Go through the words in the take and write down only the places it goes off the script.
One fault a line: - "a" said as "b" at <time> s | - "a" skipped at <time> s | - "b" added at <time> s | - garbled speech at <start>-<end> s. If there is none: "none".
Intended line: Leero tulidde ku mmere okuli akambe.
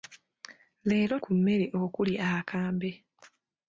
- "tulidde" skipped at 1.1 s